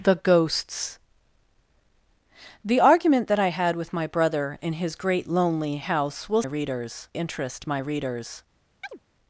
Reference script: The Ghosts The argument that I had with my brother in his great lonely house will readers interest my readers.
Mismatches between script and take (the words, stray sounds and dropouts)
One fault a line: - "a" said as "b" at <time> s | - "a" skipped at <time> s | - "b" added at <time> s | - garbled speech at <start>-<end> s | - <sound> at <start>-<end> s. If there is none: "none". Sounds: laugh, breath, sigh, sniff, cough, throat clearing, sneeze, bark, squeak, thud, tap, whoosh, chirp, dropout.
- chirp at 8.8-9.0 s